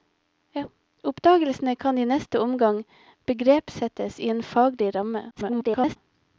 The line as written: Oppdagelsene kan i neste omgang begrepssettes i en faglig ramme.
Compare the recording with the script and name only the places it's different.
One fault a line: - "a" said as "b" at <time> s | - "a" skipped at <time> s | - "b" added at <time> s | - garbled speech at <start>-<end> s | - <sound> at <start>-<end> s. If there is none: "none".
- garbled speech at 5.3-6.0 s